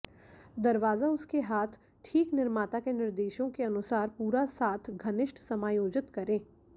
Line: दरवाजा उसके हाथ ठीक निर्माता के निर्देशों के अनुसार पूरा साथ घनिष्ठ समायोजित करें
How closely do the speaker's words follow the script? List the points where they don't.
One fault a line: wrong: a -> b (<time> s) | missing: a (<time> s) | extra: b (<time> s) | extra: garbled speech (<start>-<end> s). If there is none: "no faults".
no faults